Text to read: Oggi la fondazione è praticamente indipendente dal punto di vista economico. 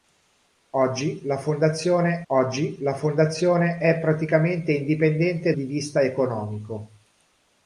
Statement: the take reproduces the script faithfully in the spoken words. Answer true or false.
false